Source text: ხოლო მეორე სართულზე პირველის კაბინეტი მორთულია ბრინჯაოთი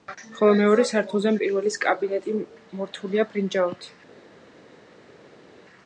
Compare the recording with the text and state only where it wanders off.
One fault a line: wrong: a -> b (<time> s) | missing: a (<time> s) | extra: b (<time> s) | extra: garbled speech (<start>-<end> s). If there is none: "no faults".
no faults